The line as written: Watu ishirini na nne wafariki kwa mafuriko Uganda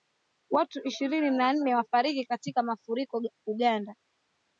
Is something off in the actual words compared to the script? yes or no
yes